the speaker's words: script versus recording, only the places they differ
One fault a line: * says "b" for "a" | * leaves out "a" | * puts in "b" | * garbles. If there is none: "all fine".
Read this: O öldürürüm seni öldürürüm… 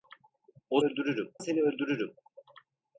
all fine